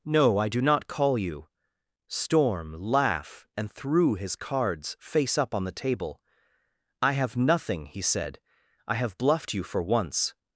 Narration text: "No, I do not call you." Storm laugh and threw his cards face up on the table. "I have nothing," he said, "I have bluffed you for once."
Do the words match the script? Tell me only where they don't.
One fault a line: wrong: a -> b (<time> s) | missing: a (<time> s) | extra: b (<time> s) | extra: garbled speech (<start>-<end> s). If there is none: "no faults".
no faults